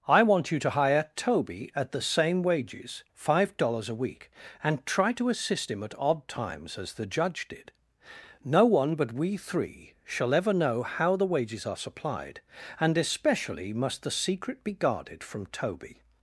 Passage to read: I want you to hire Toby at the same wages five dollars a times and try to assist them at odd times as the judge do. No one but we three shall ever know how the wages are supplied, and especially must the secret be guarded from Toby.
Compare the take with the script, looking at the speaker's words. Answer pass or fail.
fail